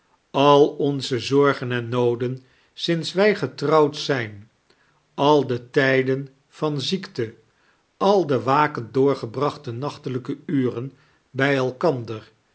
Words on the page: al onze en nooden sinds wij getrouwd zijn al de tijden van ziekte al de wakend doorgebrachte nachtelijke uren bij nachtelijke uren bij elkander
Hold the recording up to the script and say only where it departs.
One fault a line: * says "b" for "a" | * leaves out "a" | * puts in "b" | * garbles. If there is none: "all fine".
* puts in "zorgen"
* leaves out "nachtelijke uren bij"